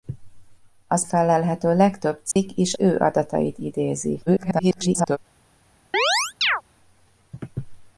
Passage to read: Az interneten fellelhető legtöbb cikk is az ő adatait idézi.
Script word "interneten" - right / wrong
wrong